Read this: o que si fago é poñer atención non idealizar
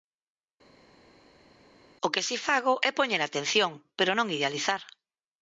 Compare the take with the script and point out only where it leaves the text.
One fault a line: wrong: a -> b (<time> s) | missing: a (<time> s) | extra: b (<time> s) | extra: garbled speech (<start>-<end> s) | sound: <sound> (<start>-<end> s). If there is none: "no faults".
extra: pero (4.0 s)